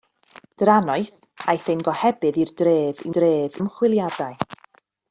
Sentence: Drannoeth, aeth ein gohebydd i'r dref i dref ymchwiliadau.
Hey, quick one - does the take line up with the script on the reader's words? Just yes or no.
yes